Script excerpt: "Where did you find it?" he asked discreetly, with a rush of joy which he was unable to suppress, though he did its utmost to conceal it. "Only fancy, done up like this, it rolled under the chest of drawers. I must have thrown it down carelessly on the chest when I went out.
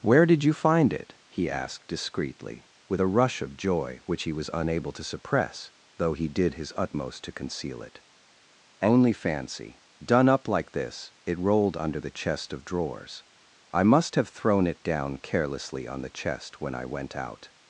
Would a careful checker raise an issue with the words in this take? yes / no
yes